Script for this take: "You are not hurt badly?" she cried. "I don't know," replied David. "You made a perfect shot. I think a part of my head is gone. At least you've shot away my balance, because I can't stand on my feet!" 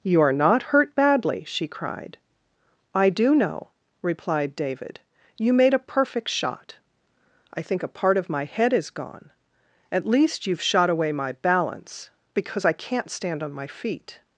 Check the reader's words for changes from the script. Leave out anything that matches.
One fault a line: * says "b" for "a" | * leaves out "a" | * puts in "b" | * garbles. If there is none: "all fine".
* says "do" for "don't"